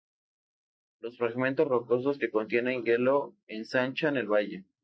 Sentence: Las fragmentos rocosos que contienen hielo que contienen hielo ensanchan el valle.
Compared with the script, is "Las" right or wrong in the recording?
wrong